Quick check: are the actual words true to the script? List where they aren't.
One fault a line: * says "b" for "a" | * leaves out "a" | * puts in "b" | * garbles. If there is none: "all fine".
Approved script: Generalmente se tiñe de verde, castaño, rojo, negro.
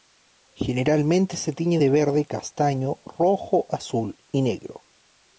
* puts in "azul y"